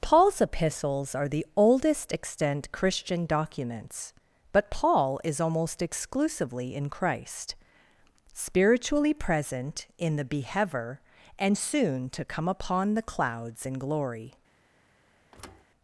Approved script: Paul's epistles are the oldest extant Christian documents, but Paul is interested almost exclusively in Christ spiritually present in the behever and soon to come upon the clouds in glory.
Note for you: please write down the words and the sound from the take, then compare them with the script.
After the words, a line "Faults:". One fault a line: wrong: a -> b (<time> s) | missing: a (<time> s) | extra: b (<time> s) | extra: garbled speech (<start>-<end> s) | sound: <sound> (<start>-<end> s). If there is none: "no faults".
Paul's epistles are the oldest extant Christian documents, but Paul is almost exclusively in Christ spiritually present in the behever and soon to come upon the clouds in glory.
Faults:
missing: interested (5.4 s)
sound: thud (15.3-15.6 s)